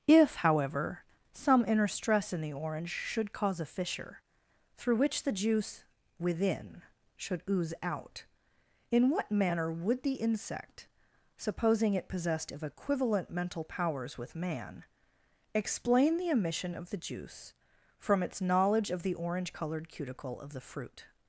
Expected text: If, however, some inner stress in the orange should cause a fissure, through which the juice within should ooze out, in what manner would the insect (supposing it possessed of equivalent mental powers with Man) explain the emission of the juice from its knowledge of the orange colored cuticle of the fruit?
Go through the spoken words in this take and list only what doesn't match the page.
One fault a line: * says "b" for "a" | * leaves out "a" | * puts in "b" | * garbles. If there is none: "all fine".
all fine